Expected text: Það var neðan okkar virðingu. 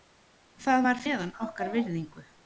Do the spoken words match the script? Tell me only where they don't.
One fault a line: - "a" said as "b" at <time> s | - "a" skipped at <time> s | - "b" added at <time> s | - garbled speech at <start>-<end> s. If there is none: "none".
none